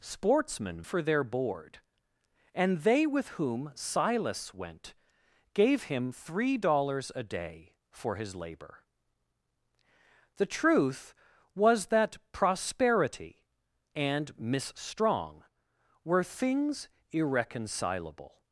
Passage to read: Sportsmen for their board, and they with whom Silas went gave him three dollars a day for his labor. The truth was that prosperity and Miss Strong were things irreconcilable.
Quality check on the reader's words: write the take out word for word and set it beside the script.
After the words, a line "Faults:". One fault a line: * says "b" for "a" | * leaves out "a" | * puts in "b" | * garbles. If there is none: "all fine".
Sportsmen for their board, and they with whom Silas went gave him three dollars a day for his labor. The truth was that prosperity and Miss Strong were things irreconcilable.
Faults:
all fine